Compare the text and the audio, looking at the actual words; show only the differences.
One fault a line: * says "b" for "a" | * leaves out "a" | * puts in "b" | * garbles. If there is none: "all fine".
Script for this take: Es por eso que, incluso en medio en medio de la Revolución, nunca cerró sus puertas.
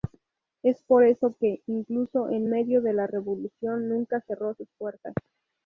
* leaves out "en medio"